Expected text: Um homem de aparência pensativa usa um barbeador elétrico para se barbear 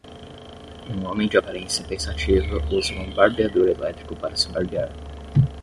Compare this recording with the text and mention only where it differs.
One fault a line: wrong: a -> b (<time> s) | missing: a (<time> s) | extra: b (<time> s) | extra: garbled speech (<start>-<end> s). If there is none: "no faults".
no faults